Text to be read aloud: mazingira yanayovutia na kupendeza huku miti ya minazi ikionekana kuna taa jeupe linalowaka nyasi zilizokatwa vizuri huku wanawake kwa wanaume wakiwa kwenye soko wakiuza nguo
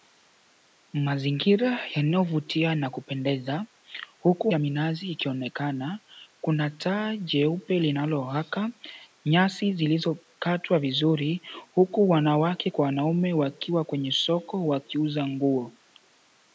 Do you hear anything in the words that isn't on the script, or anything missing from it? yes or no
yes